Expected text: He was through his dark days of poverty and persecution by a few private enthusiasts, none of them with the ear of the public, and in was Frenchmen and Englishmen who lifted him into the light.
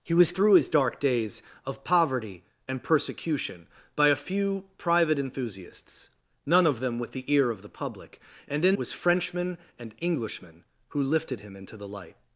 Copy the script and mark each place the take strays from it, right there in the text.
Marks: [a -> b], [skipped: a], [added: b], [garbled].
He was through his dark days of poverty and persecution by a few private enthusiasts, none of them with the ear of the public, and in was Frenchmen and Englishmen who lifted him into the light.